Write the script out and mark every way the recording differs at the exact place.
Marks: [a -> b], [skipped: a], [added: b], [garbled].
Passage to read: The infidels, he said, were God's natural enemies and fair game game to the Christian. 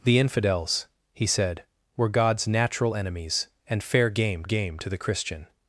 The infidels, he said, were God's natural enemies and fair game game to the Christian.